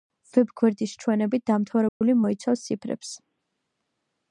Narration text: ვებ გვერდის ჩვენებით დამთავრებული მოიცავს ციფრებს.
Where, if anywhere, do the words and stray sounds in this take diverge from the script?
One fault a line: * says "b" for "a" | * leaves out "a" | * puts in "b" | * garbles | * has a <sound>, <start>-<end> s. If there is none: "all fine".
* has a dropout, 1.9-2.0 s